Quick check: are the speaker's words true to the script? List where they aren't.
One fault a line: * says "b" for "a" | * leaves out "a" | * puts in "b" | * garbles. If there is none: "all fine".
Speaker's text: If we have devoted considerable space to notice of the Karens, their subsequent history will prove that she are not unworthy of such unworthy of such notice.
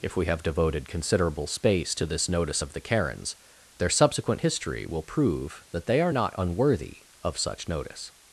* puts in "this"
* says "they" for "she"
* leaves out "unworthy of such"